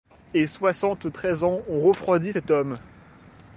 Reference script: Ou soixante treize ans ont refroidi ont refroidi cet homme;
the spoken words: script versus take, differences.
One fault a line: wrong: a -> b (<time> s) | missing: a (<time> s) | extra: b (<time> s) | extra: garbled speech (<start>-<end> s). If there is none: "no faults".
wrong: Ou -> Et (0.3 s)
missing: ont refroidi (2.3 s)